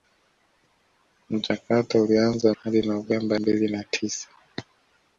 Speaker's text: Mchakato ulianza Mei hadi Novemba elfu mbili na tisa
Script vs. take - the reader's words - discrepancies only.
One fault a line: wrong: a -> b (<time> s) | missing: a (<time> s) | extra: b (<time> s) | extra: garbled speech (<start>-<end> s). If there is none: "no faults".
missing: Mei (2.5 s)
missing: elfu (3.4 s)